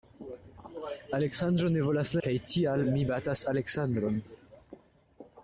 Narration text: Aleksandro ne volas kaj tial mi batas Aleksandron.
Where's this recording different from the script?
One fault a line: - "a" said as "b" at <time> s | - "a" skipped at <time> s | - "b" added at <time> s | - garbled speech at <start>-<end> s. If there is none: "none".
none